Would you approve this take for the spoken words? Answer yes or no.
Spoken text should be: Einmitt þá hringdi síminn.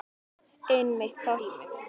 no